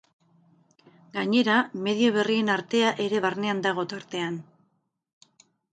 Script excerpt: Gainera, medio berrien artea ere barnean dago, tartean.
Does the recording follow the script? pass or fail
pass